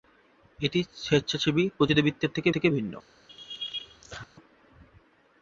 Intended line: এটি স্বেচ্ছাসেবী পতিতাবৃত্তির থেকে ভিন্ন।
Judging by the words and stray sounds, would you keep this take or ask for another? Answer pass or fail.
fail